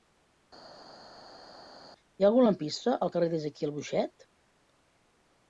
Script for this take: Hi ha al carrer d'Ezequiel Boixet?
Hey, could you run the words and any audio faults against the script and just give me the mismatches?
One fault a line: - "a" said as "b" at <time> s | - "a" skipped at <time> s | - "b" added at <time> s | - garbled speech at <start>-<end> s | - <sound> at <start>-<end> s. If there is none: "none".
- "algun lampista" added at 2.3 s